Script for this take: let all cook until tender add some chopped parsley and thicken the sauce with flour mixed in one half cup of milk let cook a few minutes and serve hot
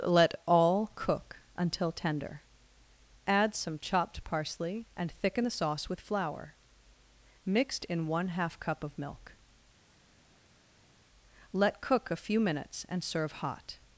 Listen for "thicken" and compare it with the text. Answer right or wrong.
right